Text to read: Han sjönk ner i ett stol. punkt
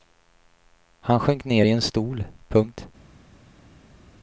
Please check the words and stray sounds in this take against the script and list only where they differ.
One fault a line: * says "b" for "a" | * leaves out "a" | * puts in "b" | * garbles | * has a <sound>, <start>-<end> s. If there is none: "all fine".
* says "en" for "ett"